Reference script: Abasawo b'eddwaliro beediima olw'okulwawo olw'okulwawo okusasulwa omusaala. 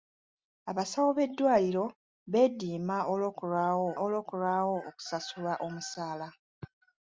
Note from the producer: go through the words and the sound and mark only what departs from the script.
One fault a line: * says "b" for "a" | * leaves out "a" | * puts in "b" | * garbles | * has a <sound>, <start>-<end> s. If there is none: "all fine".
all fine